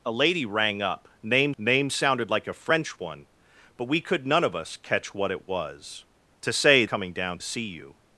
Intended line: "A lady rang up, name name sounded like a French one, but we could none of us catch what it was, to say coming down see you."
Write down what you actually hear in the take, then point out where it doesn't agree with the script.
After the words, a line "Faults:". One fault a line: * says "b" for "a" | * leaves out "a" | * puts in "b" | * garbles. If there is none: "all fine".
"A lady rang up, name name sounded like a French one, but we could none of us catch what it was, to say coming down see you."
Faults:
all fine